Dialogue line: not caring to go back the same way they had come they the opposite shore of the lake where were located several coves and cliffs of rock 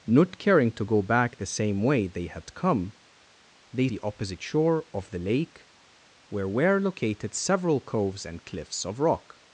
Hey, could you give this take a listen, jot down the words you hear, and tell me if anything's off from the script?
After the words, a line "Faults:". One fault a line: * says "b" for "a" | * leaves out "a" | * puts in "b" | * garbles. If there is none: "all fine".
not caring to go back the same way they had come they the opposite shore of the lake where were located several coves and cliffs of rock
Faults:
all fine